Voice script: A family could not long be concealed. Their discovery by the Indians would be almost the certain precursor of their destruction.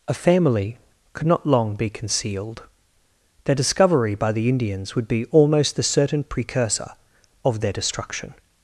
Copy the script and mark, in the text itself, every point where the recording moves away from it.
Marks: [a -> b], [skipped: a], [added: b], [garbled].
A family could not long be concealed. Their discovery by the Indians would be almost the certain precursor of their destruction.